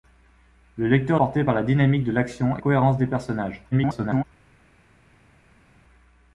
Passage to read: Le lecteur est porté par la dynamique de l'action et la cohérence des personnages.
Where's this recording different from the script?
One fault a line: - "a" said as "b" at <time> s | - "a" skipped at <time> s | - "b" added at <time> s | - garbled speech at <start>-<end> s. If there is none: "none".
- "est" skipped at 1.2 s
- "la" skipped at 2.6 s
- garbled speech at 3.7-4.2 s